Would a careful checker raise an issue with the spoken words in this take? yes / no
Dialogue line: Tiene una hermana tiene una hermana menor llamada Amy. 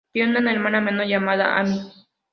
yes